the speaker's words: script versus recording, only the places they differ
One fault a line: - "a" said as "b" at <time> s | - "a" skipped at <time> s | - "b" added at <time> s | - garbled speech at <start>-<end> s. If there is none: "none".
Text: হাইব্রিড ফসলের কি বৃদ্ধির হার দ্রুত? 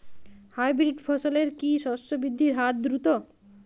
- "শস্য" added at 1.8 s